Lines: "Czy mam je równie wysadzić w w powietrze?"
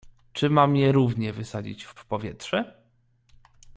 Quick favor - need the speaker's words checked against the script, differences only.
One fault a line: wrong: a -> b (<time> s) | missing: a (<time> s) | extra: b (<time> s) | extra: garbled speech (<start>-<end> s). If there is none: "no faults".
no faults